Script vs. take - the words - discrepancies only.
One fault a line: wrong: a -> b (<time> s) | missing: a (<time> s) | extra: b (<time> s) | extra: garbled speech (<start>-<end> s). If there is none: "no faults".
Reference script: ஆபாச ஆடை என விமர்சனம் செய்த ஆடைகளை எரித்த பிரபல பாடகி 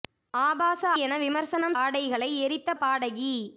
missing: ஆடை (0.8 s)
missing: செய்த (1.8 s)
missing: பிரபல (2.8 s)